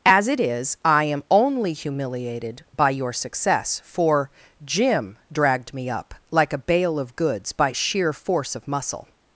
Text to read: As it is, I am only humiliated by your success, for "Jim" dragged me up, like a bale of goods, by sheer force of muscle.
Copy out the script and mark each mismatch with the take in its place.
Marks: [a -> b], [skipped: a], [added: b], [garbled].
As it is, I am only humiliated by your success, for "Jim" dragged me up, like a bale of goods, by sheer force of muscle.